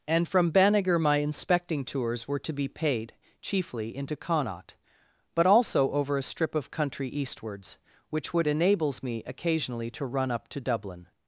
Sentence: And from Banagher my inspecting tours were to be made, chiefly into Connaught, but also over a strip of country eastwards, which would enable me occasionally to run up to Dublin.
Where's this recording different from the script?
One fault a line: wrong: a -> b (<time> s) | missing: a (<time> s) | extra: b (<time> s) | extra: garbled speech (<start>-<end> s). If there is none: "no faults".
wrong: made -> paid (2.7 s)
wrong: enable -> enables (8.5 s)